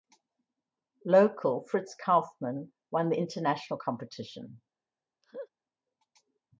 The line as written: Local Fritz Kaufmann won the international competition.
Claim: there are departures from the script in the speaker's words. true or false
false